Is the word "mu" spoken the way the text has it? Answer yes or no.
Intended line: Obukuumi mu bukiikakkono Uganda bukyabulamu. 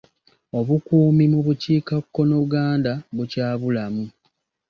yes